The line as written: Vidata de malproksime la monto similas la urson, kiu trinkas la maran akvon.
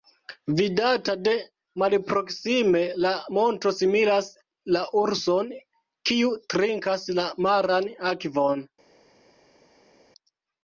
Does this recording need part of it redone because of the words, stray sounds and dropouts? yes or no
no